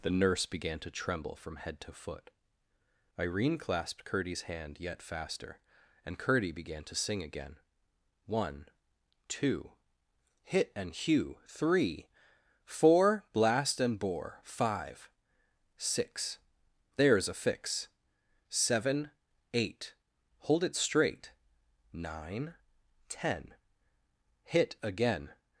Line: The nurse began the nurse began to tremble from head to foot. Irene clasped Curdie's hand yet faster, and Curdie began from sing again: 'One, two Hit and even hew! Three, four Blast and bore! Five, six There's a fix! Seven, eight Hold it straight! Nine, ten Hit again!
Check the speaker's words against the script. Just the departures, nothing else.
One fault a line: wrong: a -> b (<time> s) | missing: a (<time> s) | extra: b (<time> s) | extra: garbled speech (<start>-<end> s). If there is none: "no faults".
missing: the nurse began (0.8 s)
wrong: from -> to (6.8 s)
missing: even (10.9 s)